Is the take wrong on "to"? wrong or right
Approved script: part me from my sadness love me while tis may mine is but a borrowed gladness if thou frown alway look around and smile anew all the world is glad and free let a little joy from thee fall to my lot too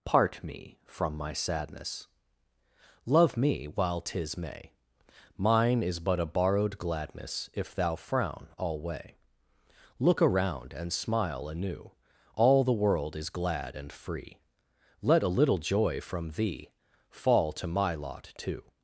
right